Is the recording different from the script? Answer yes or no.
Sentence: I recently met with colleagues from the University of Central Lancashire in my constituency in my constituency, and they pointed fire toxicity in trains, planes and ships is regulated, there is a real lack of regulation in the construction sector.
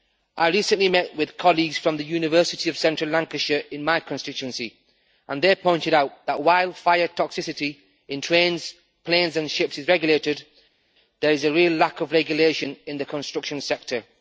yes